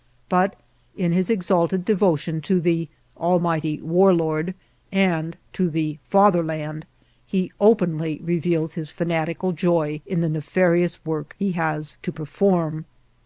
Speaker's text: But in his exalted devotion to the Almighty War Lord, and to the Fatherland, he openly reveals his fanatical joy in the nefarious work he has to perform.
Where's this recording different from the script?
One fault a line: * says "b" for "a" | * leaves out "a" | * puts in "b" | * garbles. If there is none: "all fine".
all fine